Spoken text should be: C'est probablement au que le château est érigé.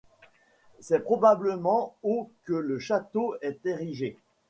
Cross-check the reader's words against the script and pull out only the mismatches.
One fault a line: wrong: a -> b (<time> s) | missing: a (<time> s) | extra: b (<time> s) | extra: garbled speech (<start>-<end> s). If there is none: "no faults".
no faults